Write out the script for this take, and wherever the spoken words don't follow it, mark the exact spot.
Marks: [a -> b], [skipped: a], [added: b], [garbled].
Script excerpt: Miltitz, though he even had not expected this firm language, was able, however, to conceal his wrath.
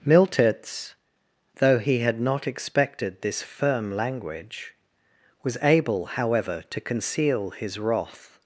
Miltitz, though he [skipped: even] had not expected this firm language, was able, however, to conceal his wrath.